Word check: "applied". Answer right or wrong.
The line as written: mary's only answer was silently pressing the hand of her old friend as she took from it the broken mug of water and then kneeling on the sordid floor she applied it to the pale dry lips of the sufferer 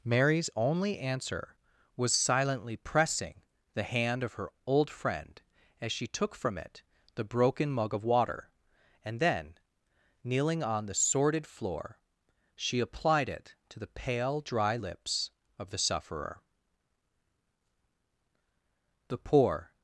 right